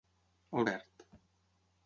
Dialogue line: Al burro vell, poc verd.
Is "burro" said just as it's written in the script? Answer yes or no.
no